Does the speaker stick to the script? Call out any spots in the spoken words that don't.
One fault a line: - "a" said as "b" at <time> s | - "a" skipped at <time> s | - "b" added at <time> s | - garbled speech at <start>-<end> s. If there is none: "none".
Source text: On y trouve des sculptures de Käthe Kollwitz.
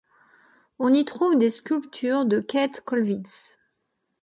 none